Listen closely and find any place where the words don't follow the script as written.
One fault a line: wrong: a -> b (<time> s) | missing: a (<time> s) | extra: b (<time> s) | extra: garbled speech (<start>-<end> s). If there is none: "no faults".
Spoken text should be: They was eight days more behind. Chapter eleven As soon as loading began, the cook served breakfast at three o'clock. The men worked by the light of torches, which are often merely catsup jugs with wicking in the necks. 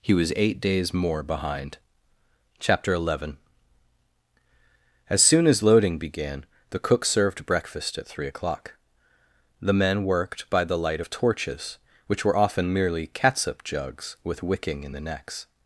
wrong: They -> He (0.0 s)
wrong: are -> were (12.2 s)